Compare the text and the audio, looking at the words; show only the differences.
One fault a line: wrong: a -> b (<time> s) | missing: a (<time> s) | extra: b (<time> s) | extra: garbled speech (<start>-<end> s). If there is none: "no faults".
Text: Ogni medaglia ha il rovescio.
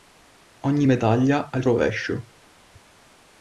no faults